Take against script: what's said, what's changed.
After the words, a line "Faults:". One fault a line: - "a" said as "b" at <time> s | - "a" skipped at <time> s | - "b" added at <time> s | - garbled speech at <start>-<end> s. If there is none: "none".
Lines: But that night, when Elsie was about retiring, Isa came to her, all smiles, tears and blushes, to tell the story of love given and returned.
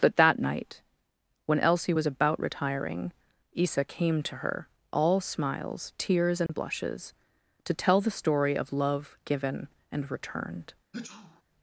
But that night, when Elsie was about retiring, Isa came to her, all smiles, tears and blushes, to tell the story of love given and returned.
Faults:
none